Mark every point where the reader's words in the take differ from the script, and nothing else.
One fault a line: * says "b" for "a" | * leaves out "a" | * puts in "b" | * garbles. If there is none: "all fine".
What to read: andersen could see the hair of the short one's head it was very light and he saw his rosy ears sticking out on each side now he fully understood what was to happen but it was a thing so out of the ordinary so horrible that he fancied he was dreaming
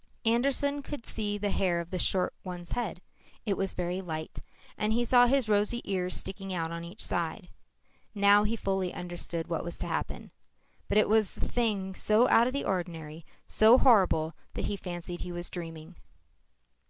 all fine